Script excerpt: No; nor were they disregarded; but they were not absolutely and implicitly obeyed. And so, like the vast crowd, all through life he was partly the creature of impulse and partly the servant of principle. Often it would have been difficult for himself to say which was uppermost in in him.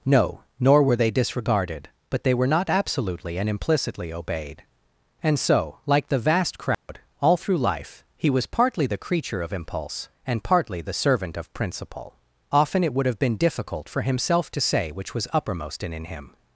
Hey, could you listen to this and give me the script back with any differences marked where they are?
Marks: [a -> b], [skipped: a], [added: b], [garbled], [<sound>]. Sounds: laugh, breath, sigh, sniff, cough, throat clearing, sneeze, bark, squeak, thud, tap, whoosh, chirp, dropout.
No; nor were they disregarded; but they were not absolutely and implicitly obeyed. And so, like the vast crowd, [dropout] all through life he was partly the creature of impulse and partly the servant of principle. Often it would have been difficult for himself to say which was uppermost in in him.